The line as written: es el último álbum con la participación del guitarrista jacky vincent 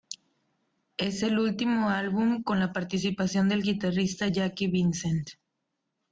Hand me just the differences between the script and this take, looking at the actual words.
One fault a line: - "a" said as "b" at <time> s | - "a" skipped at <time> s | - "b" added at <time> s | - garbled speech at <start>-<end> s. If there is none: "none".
none